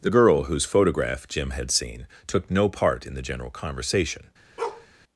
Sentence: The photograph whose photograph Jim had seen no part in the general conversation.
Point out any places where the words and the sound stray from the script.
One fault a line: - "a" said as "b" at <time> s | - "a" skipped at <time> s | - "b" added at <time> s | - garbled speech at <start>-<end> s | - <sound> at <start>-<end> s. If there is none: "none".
- "photograph" said as "girl" at 0.1 s
- "took" added at 2.3 s
- bark at 4.6-4.9 s